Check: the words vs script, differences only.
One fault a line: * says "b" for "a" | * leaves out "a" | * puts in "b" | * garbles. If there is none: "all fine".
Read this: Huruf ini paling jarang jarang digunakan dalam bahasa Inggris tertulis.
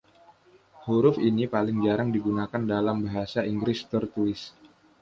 * leaves out "jarang"